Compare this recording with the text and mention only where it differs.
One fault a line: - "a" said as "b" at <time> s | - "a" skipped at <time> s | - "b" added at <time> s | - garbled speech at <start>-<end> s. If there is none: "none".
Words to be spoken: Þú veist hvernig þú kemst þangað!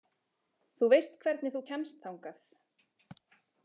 none